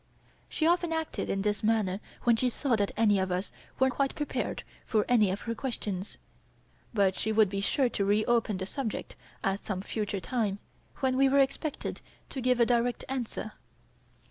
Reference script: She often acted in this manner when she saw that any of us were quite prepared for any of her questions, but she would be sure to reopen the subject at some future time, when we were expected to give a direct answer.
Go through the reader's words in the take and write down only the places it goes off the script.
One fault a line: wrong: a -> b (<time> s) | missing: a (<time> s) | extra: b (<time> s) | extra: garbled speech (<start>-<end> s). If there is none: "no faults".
no faults